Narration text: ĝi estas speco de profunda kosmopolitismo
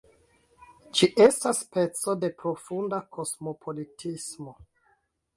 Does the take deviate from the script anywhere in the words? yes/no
no